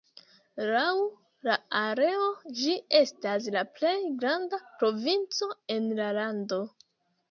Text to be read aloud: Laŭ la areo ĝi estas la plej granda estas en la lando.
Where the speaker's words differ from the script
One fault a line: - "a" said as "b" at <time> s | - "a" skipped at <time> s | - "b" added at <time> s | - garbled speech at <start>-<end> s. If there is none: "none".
- "estas" said as "provinco" at 4.8 s